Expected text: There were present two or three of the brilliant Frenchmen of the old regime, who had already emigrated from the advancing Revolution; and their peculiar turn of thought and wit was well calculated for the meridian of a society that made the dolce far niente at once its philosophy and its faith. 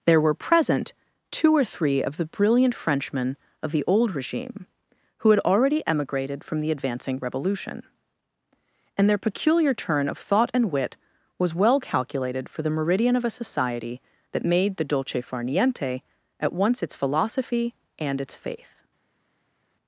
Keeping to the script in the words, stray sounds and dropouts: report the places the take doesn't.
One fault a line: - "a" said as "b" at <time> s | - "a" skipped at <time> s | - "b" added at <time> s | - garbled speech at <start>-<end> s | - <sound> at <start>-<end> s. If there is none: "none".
none